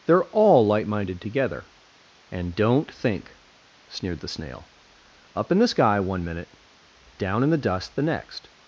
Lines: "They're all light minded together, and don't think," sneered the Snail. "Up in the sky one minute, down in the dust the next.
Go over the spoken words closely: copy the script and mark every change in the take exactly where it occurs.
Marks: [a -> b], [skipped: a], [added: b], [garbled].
"They're all light minded together, and don't think," sneered the Snail. "Up in the sky one minute, down in the dust the next.